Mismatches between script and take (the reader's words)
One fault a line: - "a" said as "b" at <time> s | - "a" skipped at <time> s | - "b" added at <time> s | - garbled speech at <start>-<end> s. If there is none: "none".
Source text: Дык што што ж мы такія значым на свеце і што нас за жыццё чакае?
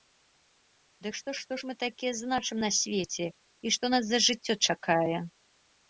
none